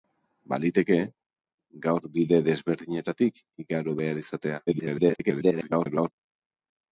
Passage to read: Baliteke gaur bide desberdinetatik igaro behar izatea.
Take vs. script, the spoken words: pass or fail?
fail